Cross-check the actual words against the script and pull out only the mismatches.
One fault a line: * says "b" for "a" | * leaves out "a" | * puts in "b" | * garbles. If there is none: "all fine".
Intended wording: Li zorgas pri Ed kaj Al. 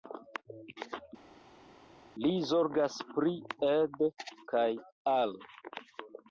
all fine